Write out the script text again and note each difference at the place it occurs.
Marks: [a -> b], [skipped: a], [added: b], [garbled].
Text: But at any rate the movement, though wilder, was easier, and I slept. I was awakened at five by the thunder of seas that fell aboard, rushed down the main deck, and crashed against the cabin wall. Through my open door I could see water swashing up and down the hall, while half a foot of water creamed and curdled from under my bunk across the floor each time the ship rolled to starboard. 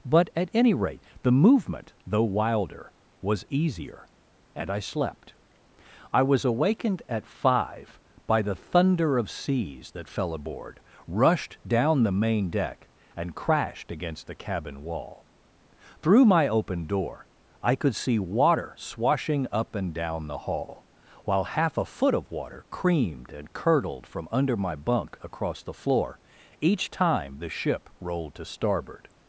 But at any rate the movement, though wilder, was easier, and I slept. I was awakened at five by the thunder of seas that fell aboard, rushed down the main deck, and crashed against the cabin wall. Through my open door I could see water swashing up and down the hall, while half a foot of water creamed and curdled from under my bunk across the floor each time the ship rolled to starboard.